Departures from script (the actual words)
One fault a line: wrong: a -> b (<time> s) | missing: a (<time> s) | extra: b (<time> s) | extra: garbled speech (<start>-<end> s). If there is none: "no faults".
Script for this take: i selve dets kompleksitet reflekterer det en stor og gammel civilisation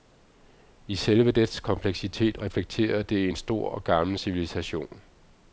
no faults